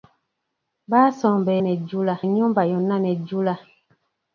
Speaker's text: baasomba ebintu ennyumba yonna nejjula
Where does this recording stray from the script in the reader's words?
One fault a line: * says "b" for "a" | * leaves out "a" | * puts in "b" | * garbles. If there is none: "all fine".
* says "nejjula" for "ebintu"